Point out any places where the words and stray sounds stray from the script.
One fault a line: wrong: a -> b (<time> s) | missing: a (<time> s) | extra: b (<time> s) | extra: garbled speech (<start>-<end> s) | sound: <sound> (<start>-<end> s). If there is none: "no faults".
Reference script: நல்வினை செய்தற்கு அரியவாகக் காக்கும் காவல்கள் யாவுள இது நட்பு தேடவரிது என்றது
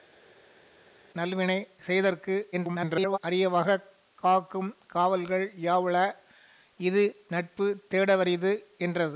extra: garbled speech (2.5-3.2 s)